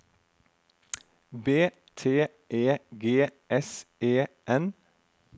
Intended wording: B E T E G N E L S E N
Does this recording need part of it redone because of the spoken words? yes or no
yes